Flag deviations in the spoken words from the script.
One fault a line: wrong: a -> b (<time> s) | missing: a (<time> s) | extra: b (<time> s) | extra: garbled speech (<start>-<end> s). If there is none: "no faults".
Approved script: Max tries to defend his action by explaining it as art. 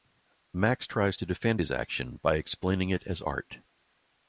no faults